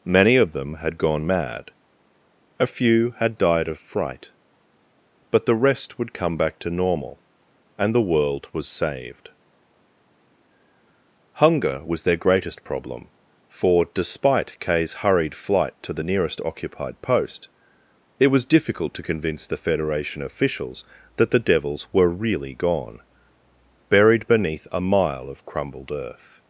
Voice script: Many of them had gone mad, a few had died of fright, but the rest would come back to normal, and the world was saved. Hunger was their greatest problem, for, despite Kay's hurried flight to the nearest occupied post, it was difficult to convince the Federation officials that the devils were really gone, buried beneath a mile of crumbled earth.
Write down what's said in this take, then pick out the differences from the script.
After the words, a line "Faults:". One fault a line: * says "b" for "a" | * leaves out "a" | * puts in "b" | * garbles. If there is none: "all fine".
Many of them had gone mad, a few had died of fright, but the rest would come back to normal, and the world was saved. Hunger was their greatest problem, for, despite Kay's hurried flight to the nearest occupied post, it was difficult to convince the Federation officials that the devils were really gone, buried beneath a mile of crumbled earth.
Faults:
all fine